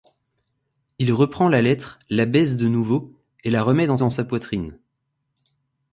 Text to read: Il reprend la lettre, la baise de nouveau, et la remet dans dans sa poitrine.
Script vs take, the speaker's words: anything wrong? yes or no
no